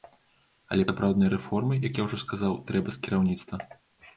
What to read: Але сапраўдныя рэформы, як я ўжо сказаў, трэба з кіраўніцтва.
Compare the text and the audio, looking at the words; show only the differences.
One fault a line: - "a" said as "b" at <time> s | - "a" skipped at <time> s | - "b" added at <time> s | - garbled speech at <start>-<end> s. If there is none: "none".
none